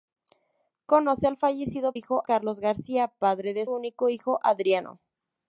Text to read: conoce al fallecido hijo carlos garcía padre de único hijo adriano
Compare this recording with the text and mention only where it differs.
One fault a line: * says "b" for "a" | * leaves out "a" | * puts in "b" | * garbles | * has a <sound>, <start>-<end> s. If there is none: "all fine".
all fine